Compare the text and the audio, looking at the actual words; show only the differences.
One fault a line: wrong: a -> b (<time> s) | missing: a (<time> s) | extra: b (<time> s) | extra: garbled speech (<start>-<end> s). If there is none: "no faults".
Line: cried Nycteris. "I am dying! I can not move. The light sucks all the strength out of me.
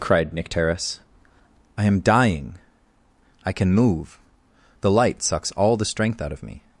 missing: not (3.7 s)